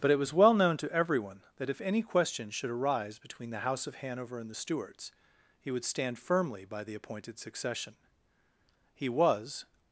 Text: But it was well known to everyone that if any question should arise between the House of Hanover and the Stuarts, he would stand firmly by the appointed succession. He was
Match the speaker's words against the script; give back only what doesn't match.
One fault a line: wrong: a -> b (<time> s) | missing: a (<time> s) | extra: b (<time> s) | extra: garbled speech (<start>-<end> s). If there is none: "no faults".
no faults